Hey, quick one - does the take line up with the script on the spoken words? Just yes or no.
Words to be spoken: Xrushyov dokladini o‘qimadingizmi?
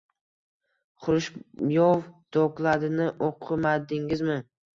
yes